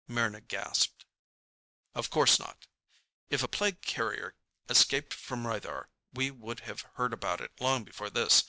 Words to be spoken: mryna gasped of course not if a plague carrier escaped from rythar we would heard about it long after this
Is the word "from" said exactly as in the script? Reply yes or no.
yes